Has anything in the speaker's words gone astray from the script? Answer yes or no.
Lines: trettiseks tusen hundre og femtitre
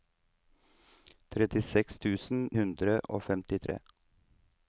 no